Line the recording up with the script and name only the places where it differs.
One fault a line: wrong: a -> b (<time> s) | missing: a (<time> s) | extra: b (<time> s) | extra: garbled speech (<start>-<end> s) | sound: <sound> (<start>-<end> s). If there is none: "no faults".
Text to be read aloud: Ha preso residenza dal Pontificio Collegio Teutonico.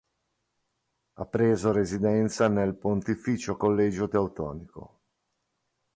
wrong: dal -> nel (2.5 s)